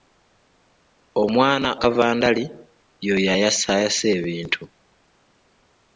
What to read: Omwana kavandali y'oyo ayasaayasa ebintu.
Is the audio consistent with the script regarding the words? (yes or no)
yes